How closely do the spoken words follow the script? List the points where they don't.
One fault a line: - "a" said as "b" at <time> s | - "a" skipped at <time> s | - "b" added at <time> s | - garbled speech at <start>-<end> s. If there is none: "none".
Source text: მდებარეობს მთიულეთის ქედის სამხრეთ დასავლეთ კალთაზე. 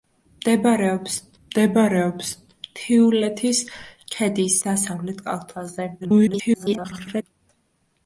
- "მდებარეობს" added at 1.4 s
- "სამხრეთ" skipped at 4.6 s
- garbled speech at 6.0-7.2 s